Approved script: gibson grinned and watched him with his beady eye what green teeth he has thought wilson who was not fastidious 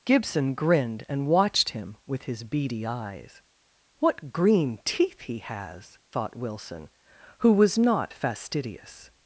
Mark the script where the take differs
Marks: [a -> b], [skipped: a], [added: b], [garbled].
gibson grinned and watched him with his beady [eye -> eyes] what green teeth he has thought wilson who was not fastidious